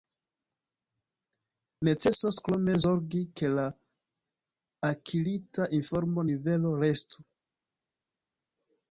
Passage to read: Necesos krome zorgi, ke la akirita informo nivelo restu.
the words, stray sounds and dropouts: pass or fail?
pass